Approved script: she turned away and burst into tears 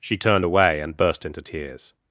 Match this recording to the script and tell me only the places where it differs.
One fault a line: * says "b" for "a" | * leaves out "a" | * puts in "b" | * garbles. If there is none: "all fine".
all fine